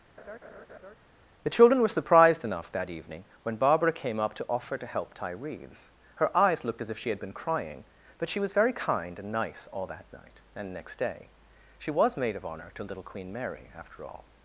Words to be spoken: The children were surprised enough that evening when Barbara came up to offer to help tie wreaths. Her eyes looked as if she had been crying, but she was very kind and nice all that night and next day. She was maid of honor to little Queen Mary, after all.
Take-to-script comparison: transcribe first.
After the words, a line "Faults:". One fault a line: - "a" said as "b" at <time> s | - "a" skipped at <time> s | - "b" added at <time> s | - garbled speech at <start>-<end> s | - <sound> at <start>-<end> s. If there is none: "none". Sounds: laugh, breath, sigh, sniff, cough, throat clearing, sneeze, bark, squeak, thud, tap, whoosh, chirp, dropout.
The children were surprised enough that evening when Barbara came up to offer to help tie wreaths. Her eyes looked as if she had been crying, but she was very kind and nice all that night and next day. She was maid of honor to little Queen Mary, after all.
Faults:
- laugh at 0.2-1.0 s